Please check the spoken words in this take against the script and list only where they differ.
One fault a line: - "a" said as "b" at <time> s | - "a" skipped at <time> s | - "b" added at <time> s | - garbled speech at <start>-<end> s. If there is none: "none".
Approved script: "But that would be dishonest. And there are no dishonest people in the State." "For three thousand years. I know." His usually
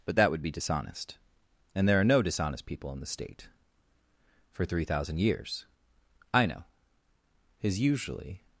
none